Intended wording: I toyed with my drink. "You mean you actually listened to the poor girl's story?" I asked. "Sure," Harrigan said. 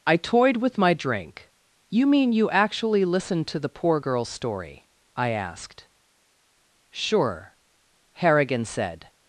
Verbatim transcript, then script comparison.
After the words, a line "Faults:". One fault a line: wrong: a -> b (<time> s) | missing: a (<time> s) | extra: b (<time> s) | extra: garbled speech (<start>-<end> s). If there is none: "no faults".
I toyed with my drink. "You mean you actually listened to the poor girl's story?" I asked. "Sure," Harrigan said.
Faults:
no faults